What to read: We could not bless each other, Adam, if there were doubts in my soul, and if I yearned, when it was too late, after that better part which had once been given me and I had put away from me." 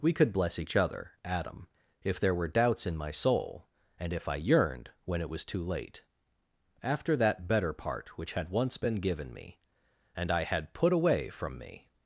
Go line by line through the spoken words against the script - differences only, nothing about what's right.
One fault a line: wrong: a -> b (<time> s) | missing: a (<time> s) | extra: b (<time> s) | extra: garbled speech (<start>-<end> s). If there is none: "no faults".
missing: not (0.3 s)